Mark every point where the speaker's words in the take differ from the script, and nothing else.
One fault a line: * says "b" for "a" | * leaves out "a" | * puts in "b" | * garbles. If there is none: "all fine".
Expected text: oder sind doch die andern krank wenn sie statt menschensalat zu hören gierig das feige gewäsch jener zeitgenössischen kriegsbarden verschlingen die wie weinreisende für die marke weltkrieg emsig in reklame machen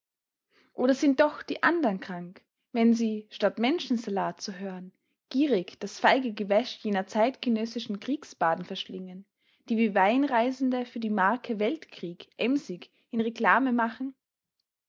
all fine